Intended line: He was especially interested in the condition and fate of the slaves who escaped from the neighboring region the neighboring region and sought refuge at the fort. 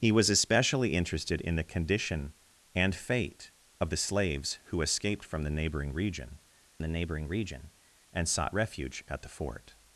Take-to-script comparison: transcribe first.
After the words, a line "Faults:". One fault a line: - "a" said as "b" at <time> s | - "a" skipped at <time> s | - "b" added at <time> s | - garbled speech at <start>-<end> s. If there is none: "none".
He was especially interested in the condition and fate of the slaves who escaped from the neighboring region the neighboring region and sought refuge at the fort.
Faults:
none